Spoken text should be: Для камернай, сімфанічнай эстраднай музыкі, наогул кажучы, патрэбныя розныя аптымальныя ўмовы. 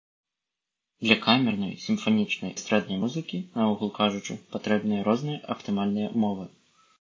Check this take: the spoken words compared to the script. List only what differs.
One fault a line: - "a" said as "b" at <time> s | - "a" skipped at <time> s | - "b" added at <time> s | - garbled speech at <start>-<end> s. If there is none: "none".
none